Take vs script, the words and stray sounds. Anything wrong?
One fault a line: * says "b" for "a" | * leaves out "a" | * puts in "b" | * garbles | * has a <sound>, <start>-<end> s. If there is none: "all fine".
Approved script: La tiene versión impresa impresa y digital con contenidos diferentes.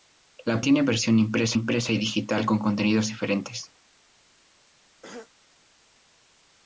* has a throat clearing, 5.0-5.3 s